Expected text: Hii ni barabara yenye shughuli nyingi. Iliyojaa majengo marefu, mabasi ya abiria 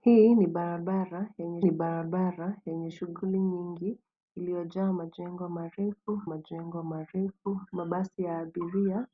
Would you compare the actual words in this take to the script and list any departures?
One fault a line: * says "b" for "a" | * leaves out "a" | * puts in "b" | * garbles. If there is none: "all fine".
* puts in "ni barabara yenye"
* puts in "majengo marefu"